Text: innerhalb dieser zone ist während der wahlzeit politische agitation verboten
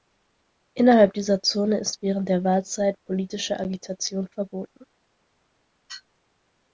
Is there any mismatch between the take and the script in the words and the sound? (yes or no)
no